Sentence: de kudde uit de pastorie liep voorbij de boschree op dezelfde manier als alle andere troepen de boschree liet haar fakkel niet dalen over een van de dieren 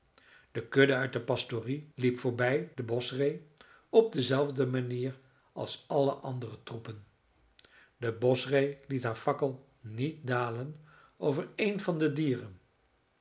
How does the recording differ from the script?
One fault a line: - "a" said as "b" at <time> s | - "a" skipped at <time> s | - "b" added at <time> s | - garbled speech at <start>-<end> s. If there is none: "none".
none